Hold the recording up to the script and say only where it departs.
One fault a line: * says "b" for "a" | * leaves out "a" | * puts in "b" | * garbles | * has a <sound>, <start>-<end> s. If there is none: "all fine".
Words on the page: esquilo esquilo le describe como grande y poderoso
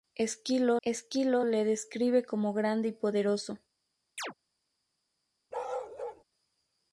* has a chirp, 4.2-4.3 s
* has a bark, 5.5-6.2 s